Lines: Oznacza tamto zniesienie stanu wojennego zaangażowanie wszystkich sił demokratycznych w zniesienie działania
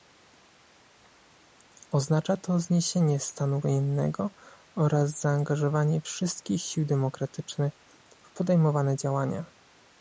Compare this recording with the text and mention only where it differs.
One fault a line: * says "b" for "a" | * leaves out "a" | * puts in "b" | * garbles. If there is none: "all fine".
* says "to" for "tamto"
* puts in "oraz"
* says "podejmowane" for "zniesienie"